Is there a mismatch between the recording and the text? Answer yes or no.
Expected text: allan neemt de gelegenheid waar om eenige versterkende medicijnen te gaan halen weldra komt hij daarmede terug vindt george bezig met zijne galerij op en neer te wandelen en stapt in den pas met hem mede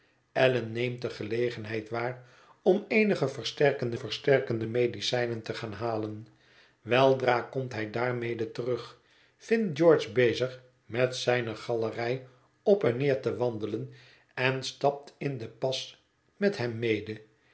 yes